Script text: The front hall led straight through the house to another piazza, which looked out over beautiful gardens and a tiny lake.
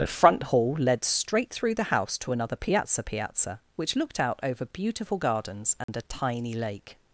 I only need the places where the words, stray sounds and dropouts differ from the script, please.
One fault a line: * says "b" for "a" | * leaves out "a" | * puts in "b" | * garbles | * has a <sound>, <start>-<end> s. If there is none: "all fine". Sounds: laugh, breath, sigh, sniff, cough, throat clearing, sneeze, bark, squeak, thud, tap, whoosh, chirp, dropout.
* puts in "piazza"
* has a dropout, 5.8-5.9 s